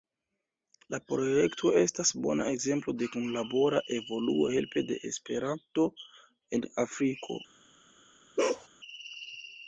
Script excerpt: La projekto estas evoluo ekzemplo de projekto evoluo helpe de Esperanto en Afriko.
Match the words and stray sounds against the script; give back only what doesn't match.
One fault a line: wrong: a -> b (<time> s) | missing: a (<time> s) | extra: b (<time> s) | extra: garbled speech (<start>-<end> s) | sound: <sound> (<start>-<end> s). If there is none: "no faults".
wrong: evoluo -> bona (2.2 s)
wrong: projekto -> kunlabora (3.1 s)
sound: bark (8.4-8.7 s)